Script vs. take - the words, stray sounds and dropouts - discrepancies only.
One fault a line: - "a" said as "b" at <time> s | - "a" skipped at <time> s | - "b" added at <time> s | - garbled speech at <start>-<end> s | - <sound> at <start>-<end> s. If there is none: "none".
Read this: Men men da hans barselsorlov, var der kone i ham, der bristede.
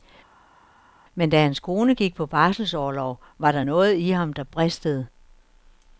- "men" skipped at 1.3 s
- "kone gik på" added at 1.6 s
- "kone" said as "noget" at 3.6 s